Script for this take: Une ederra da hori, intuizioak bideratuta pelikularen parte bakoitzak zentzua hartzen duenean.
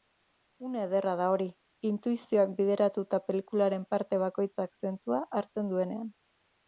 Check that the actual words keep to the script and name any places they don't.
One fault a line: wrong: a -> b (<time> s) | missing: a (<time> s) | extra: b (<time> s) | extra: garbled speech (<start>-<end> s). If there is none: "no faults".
no faults